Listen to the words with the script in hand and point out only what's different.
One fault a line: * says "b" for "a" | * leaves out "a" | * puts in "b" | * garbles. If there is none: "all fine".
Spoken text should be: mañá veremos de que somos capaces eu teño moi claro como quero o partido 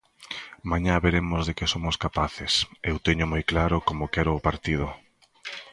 all fine